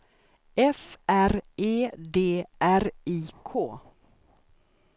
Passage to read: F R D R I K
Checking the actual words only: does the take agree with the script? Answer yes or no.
no